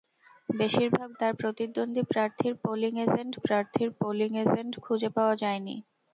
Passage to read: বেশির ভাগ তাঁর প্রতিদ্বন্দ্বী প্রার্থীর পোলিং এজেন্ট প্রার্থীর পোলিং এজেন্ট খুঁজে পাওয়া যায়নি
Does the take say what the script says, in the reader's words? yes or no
yes